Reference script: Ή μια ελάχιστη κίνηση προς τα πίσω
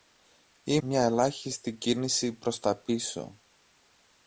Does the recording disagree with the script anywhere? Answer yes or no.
no